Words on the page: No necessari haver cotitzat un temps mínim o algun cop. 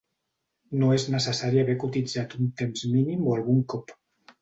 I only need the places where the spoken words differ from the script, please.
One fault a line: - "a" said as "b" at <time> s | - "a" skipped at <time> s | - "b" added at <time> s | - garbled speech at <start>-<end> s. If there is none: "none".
- "és" added at 0.9 s